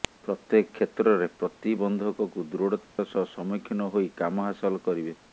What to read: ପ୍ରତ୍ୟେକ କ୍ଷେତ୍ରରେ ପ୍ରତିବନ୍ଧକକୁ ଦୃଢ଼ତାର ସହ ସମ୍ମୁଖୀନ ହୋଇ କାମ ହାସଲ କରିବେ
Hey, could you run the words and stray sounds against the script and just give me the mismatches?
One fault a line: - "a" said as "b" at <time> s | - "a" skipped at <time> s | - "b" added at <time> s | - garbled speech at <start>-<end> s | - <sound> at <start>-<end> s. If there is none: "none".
- dropout at 2.8-3.0 s